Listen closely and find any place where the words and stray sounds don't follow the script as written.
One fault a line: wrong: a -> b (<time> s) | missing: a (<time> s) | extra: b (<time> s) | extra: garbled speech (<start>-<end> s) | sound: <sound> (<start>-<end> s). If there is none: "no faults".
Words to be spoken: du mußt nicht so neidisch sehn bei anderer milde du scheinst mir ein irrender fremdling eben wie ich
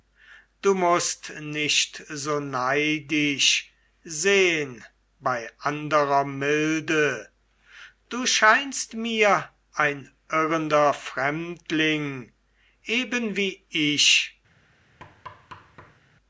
sound: thud (15.0-16.0 s)